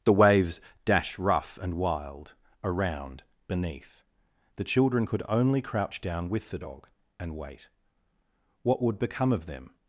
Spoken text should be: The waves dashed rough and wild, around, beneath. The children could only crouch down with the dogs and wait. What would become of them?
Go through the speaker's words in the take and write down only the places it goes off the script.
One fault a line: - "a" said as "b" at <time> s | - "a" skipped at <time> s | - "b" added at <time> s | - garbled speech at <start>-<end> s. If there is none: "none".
- "dashed" said as "dash" at 0.8 s
- "dogs" said as "dog" at 6.6 s